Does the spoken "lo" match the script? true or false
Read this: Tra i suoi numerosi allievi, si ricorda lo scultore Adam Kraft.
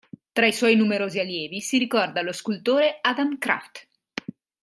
true